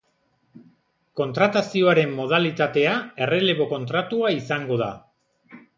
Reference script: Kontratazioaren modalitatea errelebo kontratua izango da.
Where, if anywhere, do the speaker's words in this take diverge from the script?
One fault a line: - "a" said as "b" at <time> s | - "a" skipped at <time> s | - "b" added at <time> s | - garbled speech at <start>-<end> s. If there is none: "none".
none